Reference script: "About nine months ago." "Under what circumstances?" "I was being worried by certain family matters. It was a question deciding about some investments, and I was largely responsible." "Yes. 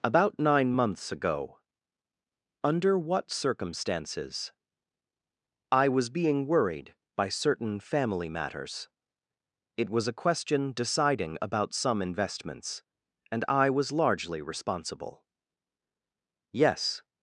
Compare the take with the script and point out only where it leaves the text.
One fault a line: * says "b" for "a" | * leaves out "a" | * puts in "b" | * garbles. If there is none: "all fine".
all fine